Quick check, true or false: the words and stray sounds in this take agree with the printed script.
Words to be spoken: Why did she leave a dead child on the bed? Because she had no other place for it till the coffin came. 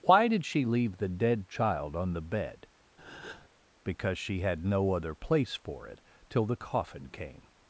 false